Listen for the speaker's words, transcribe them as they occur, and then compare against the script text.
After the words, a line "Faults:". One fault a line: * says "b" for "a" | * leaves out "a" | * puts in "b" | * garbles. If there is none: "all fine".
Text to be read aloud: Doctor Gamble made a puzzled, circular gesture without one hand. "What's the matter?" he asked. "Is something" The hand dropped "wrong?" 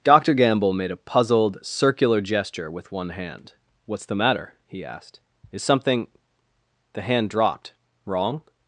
Doctor Gamble made a puzzled, circular gesture with one hand. "What's the matter?" he asked. "Is something" The hand dropped "wrong?"
Faults:
* says "with" for "without"